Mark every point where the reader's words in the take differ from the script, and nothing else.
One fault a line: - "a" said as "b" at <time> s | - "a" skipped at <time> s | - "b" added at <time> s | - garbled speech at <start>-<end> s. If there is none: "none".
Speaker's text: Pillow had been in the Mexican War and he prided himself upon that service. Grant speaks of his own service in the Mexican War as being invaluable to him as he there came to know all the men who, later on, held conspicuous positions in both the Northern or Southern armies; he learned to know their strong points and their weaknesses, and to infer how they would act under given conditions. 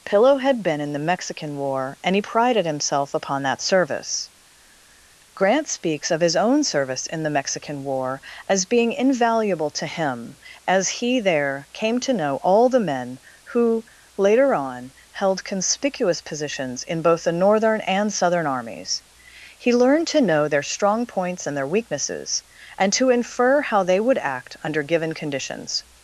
- "or" said as "and" at 17.8 s